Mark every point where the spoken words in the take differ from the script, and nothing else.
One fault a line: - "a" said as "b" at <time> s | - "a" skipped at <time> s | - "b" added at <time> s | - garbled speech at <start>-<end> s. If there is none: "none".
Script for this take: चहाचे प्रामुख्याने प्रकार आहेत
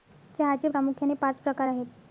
- "पाच" added at 1.2 s